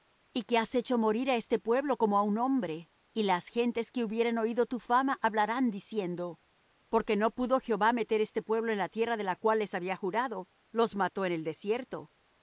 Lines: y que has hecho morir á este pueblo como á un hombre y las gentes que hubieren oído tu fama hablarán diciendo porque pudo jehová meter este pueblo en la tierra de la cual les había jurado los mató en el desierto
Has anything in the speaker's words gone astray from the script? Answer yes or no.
yes